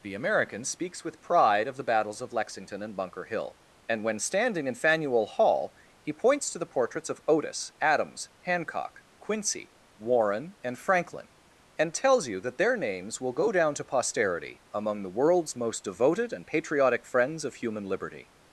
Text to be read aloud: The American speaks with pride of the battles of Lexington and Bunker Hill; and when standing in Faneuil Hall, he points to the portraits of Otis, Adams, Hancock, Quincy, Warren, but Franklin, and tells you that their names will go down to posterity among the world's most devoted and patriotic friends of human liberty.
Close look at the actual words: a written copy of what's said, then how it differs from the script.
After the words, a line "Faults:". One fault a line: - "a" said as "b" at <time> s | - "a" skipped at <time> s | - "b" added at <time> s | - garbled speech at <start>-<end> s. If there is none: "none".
The American speaks with pride of the battles of Lexington and Bunker Hill; and when standing in Faneuil Hall, he points to the portraits of Otis, Adams, Hancock, Quincy, Warren, and Franklin, and tells you that their names will go down to posterity among the world's most devoted and patriotic friends of human liberty.
Faults:
- "but" said as "and" at 10.6 s